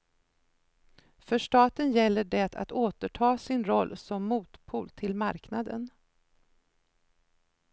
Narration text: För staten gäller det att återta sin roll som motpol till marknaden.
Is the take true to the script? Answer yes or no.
yes